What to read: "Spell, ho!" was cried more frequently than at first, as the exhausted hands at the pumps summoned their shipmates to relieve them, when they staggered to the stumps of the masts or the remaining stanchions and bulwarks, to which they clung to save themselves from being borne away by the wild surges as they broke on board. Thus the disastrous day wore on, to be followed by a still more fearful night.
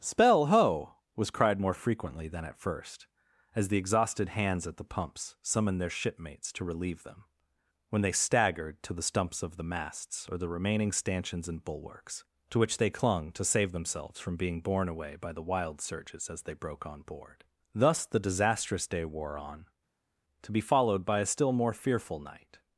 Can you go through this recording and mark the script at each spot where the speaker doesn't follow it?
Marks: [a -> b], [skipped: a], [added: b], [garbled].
"Spell, ho!" was cried more frequently than at first, as the exhausted hands at the pumps summoned their shipmates to relieve them, when they staggered to the stumps of the masts or the remaining stanchions and bulwarks, to which they clung to save themselves from being borne away by the wild surges as they broke on board. Thus the disastrous day wore on, to be followed by a still more fearful night.